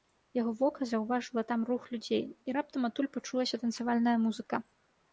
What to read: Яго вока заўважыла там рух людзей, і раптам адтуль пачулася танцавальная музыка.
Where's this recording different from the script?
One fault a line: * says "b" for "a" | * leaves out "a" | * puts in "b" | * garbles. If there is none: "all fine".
all fine